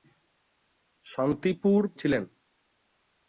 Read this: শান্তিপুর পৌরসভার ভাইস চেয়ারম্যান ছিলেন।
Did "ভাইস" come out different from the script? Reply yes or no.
yes